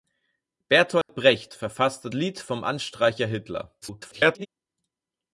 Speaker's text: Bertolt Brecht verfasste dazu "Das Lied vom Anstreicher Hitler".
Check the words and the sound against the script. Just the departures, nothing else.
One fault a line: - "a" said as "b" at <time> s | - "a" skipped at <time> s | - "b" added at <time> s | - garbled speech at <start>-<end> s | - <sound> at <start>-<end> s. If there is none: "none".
- dropout at 1.0-1.1 s
- "dazu Das" skipped at 2.1 s
- garbled speech at 3.8-4.5 s